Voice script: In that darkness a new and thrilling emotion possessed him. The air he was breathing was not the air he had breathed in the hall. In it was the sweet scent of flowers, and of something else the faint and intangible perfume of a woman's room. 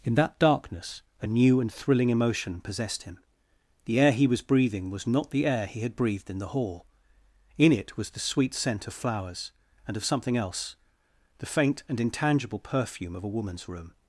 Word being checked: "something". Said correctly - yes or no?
yes